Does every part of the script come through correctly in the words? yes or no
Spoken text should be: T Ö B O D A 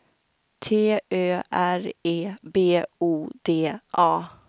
no